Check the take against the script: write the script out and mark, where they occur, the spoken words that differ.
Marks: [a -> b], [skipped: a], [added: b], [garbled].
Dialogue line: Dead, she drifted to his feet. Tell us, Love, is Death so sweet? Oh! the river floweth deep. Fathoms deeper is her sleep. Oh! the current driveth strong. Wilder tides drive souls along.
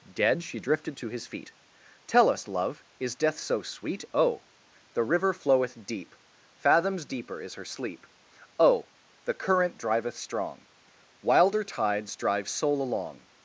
Dead, she drifted to his feet. Tell us, Love, is Death so sweet? Oh! the river floweth deep. Fathoms deeper is her sleep. Oh! the current driveth strong. Wilder tides drive [souls -> soul] along.